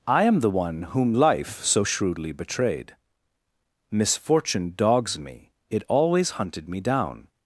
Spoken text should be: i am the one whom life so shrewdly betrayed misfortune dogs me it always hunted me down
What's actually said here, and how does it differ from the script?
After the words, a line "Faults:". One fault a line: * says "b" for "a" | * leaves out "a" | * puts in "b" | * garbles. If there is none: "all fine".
i am the one whom life so shrewdly betrayed misfortune dogs me it always hunted me down
Faults:
all fine